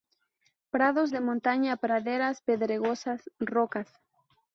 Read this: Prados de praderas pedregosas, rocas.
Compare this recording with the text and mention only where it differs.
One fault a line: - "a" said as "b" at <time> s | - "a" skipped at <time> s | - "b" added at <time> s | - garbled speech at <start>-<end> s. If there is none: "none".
- "montaña" added at 1.2 s